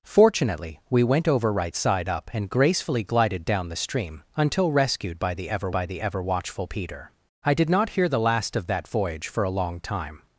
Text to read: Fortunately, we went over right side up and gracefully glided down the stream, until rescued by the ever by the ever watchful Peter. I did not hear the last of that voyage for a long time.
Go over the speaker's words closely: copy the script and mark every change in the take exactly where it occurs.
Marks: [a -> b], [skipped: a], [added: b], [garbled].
Fortunately, we went over right side up and gracefully glided down the stream, until rescued by the ever by the ever watchful Peter. I did not hear the last of that voyage for a long time.